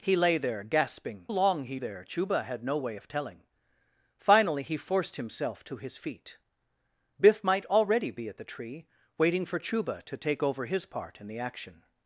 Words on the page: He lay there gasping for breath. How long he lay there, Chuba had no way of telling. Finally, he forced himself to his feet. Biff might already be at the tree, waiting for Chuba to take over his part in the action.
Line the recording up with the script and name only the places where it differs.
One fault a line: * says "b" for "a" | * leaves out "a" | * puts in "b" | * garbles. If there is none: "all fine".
* leaves out "for breath How"
* leaves out "lay"